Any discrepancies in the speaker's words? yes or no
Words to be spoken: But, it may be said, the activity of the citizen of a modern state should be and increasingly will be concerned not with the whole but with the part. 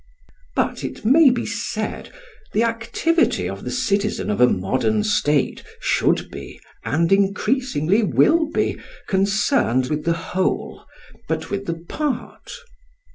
yes